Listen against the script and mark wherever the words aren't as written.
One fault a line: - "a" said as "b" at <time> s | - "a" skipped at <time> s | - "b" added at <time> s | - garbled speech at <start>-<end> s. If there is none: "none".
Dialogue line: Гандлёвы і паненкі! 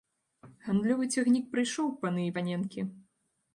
- "цягнік прыйшоў паны" added at 1.2 s